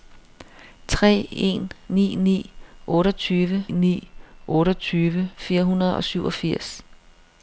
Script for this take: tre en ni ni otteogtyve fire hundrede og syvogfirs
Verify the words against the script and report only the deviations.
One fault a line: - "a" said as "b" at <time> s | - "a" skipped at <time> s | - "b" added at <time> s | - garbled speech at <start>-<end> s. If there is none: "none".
- "ni otteogtyve" added at 3.7 s